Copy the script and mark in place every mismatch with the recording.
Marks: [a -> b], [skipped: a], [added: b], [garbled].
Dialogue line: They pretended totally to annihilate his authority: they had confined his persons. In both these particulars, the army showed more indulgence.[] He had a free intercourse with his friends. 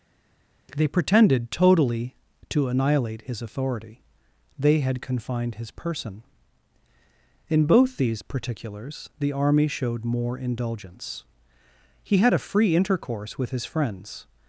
They pretended totally to annihilate his authority: they had confined his [persons. -> person] In both these particulars, the army showed more indulgence.[] He had a free intercourse with his friends.